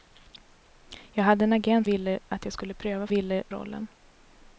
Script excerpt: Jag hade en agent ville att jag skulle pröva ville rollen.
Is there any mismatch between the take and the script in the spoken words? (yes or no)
no